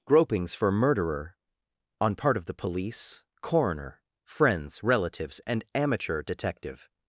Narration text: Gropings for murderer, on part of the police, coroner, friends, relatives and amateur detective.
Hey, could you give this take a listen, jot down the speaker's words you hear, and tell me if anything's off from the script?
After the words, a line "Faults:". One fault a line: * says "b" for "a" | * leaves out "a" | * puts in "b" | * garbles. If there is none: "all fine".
Gropings for murderer, on part of the police, coroner, friends, relatives and amateur detective.
Faults:
all fine